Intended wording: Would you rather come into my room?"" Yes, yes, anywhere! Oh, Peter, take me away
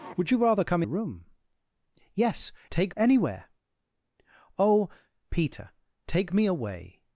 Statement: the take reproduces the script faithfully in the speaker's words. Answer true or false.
false